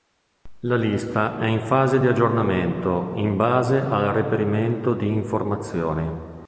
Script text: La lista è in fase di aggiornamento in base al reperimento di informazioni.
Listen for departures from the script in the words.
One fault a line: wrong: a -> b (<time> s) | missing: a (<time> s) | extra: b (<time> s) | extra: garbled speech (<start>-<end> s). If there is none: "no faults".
no faults